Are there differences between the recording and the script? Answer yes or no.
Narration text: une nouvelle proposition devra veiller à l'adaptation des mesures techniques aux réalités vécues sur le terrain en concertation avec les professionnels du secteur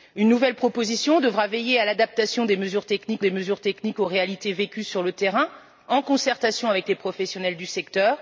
yes